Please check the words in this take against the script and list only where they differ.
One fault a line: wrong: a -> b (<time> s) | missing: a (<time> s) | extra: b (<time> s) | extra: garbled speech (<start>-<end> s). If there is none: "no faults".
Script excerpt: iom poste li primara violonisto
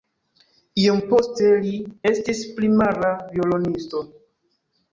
extra: estis (2.1 s)